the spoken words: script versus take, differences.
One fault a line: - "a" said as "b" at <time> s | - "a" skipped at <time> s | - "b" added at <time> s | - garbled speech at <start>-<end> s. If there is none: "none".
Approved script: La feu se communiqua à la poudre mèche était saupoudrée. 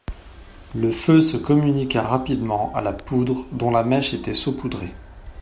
- "La" said as "Le" at 0.7 s
- "rapidement" added at 2.0 s
- "dont la" added at 3.5 s